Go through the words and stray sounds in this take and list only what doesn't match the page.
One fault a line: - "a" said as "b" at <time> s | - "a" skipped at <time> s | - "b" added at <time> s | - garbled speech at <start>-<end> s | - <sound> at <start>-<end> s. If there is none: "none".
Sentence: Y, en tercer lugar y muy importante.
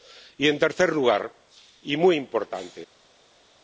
none